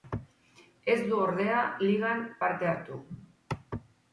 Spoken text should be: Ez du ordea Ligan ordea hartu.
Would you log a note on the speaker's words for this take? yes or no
yes